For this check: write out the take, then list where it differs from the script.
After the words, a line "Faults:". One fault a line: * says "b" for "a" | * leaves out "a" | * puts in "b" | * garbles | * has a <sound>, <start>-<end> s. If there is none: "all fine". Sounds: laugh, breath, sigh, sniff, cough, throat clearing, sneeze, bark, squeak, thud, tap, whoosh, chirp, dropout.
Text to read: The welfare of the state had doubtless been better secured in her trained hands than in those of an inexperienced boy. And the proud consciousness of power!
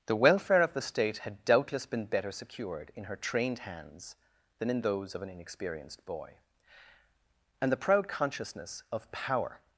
The welfare of the state had doubtless been better secured in her trained hands than in those of an inexperienced boy. And the proud consciousness of power!
Faults:
all fine